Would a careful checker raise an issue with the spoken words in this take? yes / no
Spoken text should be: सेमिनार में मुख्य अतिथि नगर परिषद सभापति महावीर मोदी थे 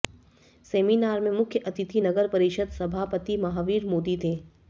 no